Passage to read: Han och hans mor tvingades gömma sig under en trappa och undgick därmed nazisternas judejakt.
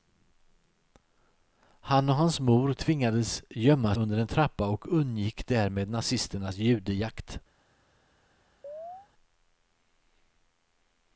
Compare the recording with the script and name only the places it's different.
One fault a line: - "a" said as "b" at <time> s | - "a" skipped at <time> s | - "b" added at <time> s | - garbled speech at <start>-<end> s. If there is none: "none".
- "sig" skipped at 3.9 s